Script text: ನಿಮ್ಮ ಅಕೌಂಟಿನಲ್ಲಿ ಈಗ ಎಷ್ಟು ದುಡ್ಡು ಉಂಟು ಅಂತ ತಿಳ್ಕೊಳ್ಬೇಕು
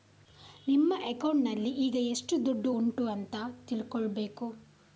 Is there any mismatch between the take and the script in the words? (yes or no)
no